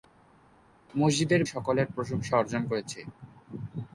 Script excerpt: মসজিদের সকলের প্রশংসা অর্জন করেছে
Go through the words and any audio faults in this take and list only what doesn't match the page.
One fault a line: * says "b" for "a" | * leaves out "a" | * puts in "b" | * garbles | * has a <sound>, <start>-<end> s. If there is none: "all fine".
all fine